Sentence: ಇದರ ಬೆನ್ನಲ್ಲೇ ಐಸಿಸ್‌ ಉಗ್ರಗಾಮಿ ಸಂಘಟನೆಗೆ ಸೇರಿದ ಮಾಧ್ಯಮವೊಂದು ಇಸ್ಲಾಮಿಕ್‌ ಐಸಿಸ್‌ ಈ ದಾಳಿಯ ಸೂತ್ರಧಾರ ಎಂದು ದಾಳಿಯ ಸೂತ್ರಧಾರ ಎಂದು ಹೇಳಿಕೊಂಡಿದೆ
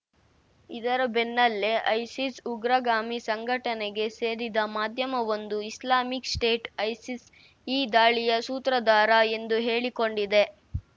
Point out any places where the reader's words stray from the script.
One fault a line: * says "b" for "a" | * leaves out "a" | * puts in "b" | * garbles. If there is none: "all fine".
* puts in "ಸ್ಟೇಟ್"
* leaves out "ದಾಳಿಯ ಸೂತ್ರಧಾರ ಎಂದು"